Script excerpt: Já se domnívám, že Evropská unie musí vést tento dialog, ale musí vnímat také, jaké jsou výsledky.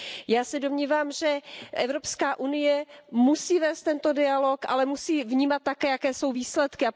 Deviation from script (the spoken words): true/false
false